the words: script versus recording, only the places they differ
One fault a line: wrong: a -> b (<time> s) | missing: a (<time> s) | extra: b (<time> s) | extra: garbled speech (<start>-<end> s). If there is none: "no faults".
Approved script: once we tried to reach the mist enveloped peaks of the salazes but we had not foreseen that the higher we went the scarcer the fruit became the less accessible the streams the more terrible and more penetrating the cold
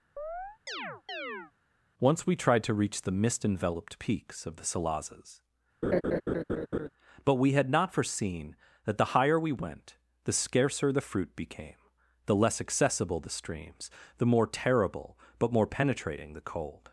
wrong: and -> but (15.4 s)